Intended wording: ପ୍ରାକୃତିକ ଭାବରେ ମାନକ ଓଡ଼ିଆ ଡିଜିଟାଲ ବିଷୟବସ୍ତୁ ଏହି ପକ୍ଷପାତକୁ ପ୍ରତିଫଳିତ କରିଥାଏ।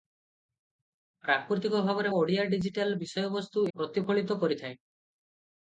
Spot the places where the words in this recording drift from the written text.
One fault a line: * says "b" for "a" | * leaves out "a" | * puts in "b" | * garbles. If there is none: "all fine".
* leaves out "ମାନକ"
* leaves out "ଏହି ପକ୍ଷପାତକୁ"